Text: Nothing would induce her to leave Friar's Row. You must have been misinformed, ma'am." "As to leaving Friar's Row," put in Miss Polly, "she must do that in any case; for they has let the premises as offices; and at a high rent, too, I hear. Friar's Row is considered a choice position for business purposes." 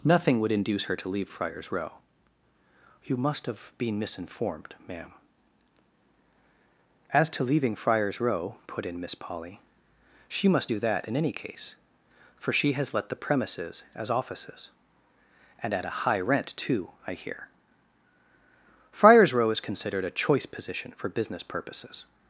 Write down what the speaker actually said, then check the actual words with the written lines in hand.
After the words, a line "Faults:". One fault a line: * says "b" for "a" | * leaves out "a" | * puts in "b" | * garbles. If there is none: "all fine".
Nothing would induce her to leave Friar's Row. You must have been misinformed, ma'am." "As to leaving Friar's Row," put in Miss Polly, "she must do that in any case; for she has let the premises as offices; and at a high rent, too, I hear. Friar's Row is considered a choice position for business purposes."
Faults:
* says "she" for "they"